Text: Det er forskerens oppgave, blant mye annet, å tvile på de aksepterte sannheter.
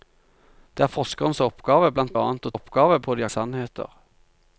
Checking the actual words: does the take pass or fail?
fail